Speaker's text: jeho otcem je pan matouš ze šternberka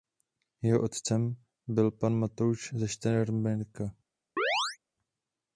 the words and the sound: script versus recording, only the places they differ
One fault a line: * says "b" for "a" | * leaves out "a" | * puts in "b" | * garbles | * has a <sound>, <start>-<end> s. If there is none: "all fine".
* says "byl" for "je"
* has a chirp, 4.4-4.8 s